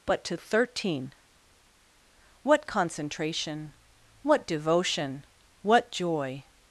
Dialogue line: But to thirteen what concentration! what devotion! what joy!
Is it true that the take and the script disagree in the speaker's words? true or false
false